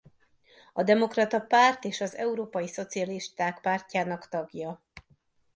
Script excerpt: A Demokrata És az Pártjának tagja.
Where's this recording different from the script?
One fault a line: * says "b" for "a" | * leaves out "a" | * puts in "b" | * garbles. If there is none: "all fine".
* puts in "Párt"
* puts in "Európai Szocialisták"